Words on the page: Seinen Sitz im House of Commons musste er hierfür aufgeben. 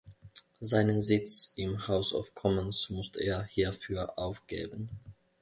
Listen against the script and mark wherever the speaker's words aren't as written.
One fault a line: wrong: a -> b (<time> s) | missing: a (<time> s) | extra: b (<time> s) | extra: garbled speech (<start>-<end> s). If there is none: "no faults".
no faults